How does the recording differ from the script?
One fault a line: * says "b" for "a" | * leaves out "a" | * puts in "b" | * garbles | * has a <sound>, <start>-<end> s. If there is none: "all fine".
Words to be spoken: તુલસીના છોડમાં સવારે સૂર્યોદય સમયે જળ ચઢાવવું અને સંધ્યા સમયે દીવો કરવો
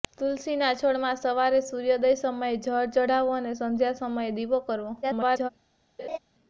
* garbles
* has a laugh, 6.0-6.2 s